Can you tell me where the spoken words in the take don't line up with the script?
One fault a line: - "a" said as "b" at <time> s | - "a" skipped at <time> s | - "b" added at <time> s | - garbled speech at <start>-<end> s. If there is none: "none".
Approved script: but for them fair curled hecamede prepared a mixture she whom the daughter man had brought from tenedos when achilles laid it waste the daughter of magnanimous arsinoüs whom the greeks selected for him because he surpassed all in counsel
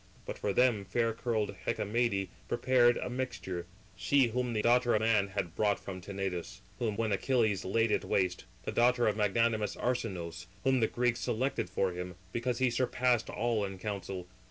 none